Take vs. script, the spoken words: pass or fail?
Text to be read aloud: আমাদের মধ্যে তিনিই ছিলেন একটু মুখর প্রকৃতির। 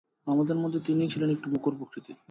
pass